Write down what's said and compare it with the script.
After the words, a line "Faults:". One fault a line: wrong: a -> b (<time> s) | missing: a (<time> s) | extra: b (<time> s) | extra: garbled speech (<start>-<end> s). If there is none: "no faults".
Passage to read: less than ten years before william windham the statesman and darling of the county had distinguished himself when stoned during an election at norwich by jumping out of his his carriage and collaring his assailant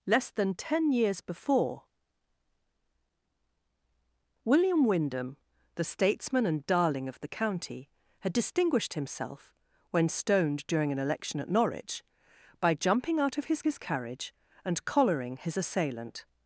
less than ten years before william windham the statesman and darling of the county had distinguished himself when stoned during an election at norwich by jumping out of his his carriage and collaring his assailant
Faults:
no faults